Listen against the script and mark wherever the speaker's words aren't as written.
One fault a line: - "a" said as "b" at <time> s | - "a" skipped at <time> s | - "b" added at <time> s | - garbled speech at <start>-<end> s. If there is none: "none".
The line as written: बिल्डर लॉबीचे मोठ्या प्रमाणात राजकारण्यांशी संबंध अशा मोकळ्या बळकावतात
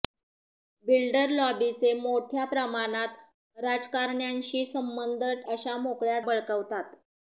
none